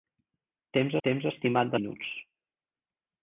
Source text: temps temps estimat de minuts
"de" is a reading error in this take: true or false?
false